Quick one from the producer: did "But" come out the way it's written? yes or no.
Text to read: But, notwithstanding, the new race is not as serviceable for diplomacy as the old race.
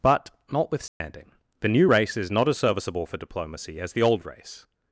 yes